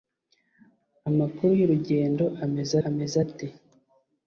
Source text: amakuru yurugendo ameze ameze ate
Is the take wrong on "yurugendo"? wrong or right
right